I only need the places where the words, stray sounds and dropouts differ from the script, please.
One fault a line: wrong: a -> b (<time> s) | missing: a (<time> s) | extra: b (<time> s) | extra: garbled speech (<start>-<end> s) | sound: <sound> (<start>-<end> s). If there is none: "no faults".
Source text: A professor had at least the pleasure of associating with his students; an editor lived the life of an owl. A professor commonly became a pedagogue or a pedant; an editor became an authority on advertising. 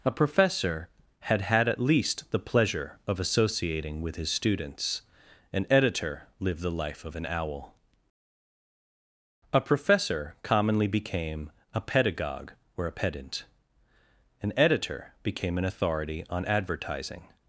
extra: had (1.4 s)